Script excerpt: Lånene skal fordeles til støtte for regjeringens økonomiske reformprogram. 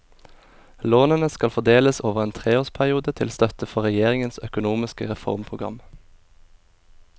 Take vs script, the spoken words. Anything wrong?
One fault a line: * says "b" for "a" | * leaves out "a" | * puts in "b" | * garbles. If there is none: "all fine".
* puts in "over en treårsperiode"